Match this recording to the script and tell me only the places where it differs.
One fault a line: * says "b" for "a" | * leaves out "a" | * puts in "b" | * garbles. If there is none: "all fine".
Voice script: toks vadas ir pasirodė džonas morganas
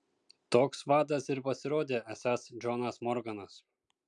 * puts in "esąs"